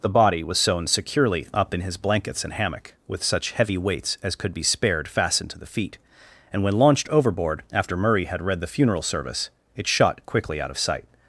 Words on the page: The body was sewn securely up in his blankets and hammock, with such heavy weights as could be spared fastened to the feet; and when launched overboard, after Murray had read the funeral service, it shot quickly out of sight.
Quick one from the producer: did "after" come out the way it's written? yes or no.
yes